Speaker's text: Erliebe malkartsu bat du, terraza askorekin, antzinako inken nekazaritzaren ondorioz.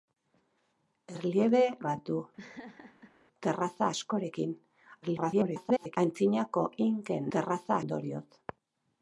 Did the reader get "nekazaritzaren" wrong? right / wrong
wrong